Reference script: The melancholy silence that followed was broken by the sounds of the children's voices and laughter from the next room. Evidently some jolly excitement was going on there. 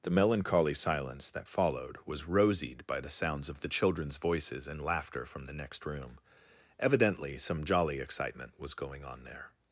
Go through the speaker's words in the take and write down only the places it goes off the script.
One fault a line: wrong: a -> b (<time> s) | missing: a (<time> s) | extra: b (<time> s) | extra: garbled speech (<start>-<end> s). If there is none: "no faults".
wrong: broken -> rosied (2.2 s)